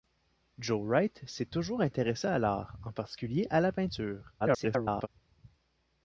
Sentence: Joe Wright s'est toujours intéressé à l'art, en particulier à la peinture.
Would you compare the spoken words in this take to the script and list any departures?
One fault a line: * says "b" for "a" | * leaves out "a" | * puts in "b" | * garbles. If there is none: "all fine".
* garbles